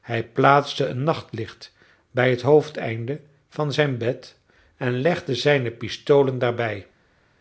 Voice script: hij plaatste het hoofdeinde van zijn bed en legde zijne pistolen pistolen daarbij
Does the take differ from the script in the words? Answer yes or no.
yes